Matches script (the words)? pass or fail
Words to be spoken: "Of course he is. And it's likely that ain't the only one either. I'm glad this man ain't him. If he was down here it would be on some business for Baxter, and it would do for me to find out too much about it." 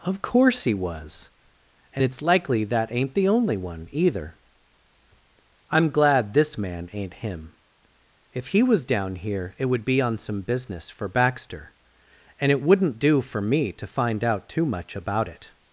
fail